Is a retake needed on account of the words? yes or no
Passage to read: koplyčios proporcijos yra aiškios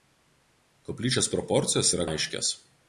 no